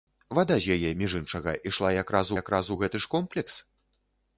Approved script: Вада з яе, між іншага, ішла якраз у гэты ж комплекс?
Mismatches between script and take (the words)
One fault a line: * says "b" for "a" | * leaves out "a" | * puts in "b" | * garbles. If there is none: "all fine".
* puts in "якраз"